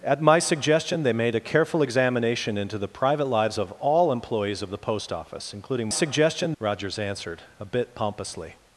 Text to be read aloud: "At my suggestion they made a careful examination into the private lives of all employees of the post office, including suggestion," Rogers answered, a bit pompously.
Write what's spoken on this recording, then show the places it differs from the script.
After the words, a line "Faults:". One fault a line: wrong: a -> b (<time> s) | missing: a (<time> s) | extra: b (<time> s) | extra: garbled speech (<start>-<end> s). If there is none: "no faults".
"At my suggestion they made a careful examination into the private lives of all employees of the post office, including suggestion," Rogers answered, a bit pompously.
Faults:
no faults